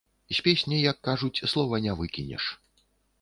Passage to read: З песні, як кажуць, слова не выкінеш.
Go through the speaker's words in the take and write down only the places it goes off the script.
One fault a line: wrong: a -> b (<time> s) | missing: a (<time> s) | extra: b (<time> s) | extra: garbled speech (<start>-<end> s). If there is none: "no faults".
no faults